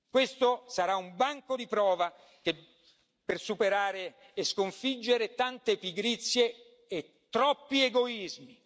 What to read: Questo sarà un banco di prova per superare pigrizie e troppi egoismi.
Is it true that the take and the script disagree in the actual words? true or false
true